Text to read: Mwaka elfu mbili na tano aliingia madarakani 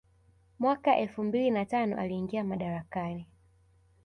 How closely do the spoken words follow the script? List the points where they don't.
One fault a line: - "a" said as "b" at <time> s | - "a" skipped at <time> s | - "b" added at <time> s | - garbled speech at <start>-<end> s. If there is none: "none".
none